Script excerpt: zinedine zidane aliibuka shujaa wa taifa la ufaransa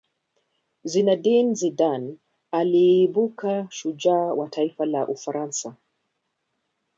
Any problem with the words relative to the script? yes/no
no